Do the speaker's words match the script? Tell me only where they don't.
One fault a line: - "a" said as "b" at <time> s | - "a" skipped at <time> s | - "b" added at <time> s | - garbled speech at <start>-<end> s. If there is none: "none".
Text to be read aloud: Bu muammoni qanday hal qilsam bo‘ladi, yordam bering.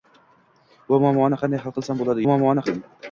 - "yordam" said as "muammoni" at 2.3 s